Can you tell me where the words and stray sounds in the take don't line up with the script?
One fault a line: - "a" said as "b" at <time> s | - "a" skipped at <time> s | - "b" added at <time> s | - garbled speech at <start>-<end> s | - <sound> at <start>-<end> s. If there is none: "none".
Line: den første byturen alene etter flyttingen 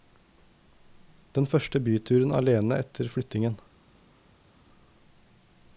none